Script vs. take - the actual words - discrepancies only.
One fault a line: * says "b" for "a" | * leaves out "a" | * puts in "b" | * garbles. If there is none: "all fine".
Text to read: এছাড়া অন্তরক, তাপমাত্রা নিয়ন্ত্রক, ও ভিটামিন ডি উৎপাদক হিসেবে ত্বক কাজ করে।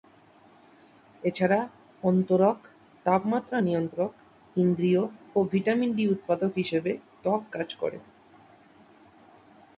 * puts in "ইন্দ্রিয়"